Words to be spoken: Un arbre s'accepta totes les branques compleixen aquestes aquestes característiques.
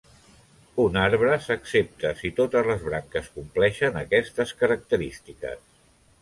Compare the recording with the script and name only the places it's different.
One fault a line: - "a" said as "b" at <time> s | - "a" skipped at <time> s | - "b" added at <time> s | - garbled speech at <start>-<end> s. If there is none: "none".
- "si" added at 2.2 s
- "aquestes" skipped at 4.6 s